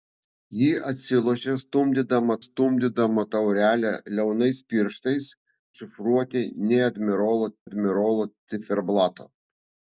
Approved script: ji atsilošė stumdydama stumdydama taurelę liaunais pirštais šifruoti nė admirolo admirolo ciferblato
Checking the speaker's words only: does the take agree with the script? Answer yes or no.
yes